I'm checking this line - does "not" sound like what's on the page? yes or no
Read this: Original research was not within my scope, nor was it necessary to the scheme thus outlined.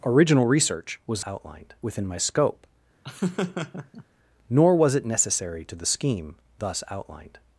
no